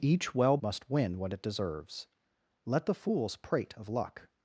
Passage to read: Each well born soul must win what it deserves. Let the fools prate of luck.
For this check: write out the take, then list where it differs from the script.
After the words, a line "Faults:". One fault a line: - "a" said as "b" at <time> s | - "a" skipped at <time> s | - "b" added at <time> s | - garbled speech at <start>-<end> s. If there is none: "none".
Each well must win what it deserves. Let the fools prate of luck.
Faults:
- "born soul" skipped at 0.6 s